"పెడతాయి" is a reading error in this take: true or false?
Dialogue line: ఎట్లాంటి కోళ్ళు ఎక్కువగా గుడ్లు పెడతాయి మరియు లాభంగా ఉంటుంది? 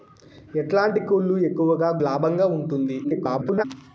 true